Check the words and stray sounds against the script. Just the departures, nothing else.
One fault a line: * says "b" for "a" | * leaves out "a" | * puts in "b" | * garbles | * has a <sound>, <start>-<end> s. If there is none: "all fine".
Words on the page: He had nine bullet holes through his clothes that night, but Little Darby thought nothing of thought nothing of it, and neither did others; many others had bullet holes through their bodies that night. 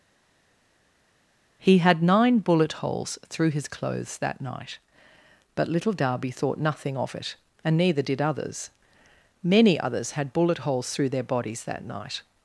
* leaves out "thought nothing of"